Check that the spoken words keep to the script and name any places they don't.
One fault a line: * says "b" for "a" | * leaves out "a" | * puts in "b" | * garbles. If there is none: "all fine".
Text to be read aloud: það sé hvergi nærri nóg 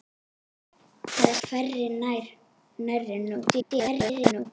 * leaves out "sé"
* garbles